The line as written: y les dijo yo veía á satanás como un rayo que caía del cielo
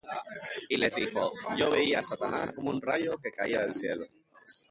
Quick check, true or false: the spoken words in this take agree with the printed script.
true